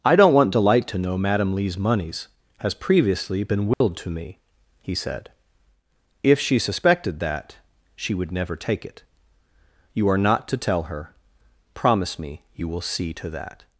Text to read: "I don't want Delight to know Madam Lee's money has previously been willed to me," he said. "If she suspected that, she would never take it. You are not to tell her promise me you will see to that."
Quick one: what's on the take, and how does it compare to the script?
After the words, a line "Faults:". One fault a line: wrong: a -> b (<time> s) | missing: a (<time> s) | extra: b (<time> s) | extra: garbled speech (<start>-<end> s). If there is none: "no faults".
"I don't want Delight to know Madam Lee's moneys has previously been willed to me," he said. "If she suspected that, she would never take it. You are not to tell her promise me you will see to that."
Faults:
wrong: money -> moneys (1.8 s)